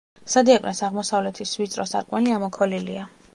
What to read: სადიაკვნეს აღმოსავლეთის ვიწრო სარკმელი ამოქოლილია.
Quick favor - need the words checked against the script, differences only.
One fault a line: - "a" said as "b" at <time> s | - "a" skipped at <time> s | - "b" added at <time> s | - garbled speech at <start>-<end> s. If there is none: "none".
none